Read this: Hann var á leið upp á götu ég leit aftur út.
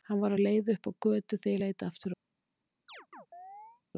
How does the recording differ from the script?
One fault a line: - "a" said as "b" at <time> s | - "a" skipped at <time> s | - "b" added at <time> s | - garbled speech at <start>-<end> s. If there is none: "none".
- "þegar" added at 1.4 s